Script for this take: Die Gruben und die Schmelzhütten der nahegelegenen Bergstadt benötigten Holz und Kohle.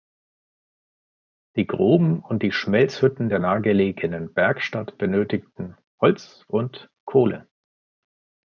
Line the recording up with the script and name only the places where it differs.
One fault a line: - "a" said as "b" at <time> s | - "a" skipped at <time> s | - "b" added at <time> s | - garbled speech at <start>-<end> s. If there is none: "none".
none